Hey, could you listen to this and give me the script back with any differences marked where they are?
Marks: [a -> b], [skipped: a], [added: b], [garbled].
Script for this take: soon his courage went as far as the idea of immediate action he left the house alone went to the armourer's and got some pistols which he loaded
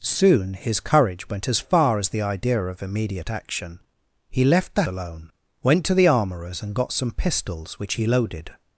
soon his courage went as far as the idea of immediate action he left the [skipped: house] alone went to the armourer's and got some pistols which he loaded